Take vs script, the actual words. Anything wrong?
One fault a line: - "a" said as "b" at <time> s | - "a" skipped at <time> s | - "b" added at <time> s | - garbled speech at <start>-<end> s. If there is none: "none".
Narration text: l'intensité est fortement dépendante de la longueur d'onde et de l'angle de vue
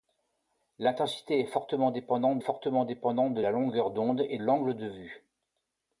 - "fortement dépendante" added at 2.4 s
- "de" skipped at 4.4 s